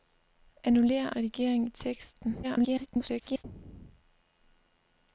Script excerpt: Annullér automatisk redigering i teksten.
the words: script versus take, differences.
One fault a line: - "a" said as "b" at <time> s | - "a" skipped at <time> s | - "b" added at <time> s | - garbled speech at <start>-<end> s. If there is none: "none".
- "automatisk" skipped at 1.1 s
- garbled speech at 2.4-3.4 s